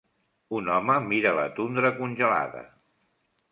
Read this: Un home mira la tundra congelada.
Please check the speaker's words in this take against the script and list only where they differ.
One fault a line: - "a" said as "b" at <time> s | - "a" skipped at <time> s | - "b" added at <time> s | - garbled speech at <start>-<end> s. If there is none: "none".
none